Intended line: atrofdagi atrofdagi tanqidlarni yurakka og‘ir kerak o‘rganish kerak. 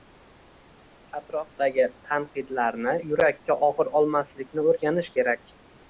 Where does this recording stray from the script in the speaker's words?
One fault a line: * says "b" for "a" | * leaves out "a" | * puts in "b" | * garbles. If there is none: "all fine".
* leaves out "atrofdagi"
* says "olmaslikni" for "kerak"